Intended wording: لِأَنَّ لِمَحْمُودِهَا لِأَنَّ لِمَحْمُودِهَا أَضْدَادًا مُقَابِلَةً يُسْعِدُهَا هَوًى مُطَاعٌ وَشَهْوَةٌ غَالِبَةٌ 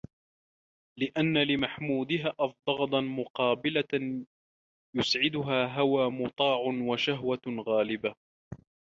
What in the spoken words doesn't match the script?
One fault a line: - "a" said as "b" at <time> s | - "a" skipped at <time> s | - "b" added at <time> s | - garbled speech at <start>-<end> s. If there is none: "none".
- "لِأَنَّ لِمَحْمُودِهَا" skipped at 2.4 s